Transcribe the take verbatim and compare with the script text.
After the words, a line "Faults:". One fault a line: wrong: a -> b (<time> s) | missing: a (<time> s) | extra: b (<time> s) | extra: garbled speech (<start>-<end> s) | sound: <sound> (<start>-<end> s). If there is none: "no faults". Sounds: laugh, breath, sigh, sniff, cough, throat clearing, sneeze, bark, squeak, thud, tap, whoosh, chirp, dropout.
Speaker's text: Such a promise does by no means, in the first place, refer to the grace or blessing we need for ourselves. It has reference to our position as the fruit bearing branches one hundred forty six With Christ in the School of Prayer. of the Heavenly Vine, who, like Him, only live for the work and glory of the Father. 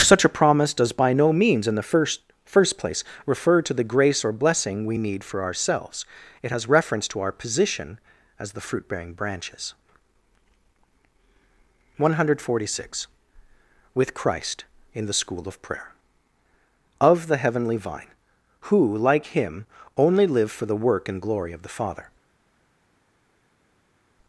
Such a promise does by no means, in the first first place, refer to the grace or blessing we need for ourselves. It has reference to our position as the fruit bearing branches one hundred forty six With Christ in the School of Prayer. of the Heavenly Vine, who, like Him, only live for the work and glory of the Father.
Faults:
extra: first (2.4 s)